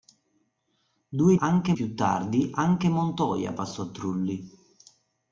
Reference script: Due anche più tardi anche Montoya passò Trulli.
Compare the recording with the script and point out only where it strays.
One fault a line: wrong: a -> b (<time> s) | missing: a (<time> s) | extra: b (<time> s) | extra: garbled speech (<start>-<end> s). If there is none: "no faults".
no faults